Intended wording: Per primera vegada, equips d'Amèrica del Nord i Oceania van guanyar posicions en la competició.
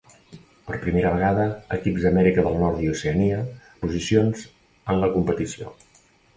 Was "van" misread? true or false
true